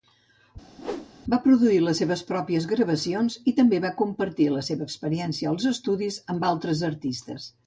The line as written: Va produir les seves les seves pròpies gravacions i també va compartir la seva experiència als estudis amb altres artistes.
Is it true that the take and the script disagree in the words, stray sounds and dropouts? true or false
true